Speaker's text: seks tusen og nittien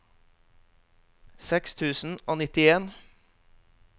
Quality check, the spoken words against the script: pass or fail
pass